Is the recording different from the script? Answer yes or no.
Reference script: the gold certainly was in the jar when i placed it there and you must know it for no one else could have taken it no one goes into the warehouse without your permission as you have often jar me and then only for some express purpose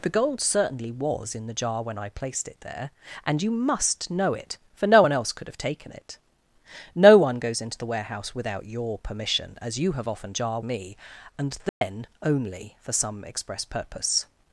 no